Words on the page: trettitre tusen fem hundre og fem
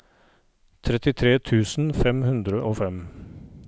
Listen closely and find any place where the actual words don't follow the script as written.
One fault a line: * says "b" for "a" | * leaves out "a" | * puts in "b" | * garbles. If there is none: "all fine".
all fine